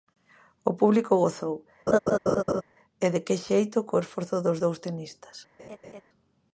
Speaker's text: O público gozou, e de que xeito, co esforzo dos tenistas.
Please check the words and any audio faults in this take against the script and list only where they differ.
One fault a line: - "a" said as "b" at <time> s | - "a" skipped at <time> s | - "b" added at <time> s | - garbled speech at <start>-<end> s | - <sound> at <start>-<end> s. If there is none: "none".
- laugh at 1.9-2.6 s
- "dous" added at 4.6 s
- laugh at 5.6-6.0 s